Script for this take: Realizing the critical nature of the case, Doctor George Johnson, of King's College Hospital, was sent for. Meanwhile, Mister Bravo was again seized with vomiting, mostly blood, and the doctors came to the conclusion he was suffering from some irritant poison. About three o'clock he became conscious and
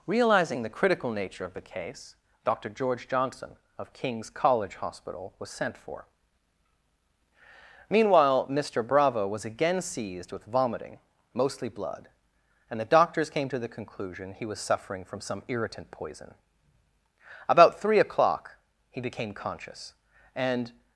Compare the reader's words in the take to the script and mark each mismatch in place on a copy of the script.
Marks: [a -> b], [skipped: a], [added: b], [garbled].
Realizing the critical nature of the case, Doctor George Johnson, of King's College Hospital, was sent for. Meanwhile, Mister Bravo was again seized with vomiting, mostly blood, and the doctors came to the conclusion he was suffering from some irritant poison. About three o'clock he became conscious and